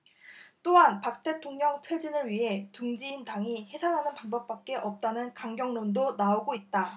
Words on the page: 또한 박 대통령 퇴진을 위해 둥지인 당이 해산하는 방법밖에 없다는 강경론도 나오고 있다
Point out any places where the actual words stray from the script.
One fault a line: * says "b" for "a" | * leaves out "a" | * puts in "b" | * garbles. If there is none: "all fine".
all fine